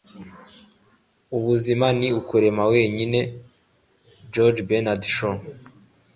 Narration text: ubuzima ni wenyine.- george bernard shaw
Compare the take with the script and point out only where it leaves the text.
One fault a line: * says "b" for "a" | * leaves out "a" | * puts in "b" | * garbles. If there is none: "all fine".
* puts in "ukurema"